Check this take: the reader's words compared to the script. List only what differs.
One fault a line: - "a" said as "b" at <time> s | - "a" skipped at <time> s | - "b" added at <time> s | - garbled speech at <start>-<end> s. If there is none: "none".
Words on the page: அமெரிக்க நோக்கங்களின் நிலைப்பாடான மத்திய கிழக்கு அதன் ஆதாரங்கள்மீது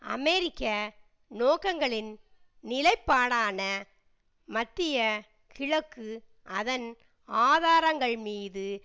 none